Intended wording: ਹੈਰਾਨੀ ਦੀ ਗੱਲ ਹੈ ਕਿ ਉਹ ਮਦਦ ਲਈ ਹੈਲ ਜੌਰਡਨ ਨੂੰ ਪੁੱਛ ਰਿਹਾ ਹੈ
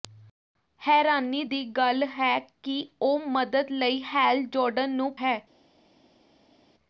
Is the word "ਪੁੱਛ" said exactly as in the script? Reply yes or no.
no